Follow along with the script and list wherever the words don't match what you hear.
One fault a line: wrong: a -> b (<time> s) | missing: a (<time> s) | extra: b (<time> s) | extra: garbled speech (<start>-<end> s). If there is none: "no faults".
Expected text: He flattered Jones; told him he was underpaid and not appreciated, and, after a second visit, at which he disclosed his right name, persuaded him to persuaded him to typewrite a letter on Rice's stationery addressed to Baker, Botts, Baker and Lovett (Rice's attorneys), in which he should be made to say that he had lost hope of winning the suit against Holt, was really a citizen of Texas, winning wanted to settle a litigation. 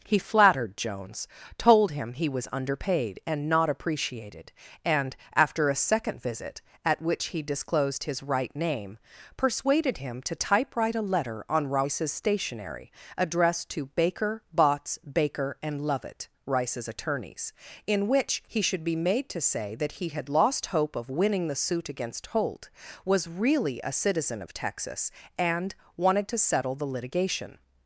missing: persuaded him to (10.4 s)
wrong: winning -> and (25.4 s)
wrong: a -> the (26.7 s)